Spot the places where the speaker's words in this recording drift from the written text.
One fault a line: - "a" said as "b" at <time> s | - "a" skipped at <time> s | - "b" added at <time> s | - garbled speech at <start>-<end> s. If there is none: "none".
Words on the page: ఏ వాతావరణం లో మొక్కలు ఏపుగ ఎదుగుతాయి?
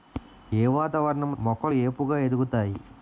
- "లో" skipped at 1.4 s